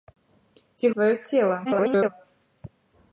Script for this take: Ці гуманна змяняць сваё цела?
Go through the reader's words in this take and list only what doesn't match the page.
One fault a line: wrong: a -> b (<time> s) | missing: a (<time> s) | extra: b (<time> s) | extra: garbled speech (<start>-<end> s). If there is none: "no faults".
missing: гуманна змяняць (0.8 s)
extra: garbled speech (1.6-2.1 s)